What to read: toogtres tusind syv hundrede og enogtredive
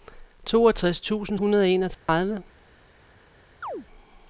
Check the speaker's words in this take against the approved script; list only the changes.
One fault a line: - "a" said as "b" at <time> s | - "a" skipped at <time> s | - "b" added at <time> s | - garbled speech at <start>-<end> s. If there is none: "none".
- "syv" skipped at 1.4 s